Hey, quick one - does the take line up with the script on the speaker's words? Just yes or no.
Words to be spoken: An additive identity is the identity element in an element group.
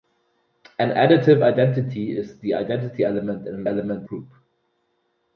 yes